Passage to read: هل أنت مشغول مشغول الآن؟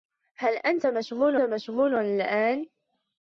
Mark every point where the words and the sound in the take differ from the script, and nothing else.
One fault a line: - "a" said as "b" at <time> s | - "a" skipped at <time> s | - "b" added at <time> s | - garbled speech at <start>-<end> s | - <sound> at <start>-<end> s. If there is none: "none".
none